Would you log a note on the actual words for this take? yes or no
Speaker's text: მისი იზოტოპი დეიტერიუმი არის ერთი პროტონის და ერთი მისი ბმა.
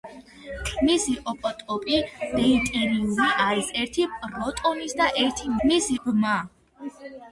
no